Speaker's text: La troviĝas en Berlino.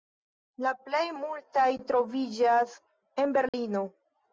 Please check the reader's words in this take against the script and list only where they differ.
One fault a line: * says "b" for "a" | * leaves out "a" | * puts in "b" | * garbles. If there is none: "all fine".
* puts in "plej multaj"